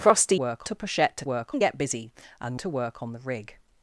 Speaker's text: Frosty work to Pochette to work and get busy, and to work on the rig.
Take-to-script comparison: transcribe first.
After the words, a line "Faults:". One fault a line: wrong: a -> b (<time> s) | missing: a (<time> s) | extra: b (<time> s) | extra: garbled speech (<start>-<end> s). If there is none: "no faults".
Frosty work to Pochette to work and get busy, and to work on the rig.
Faults:
no faults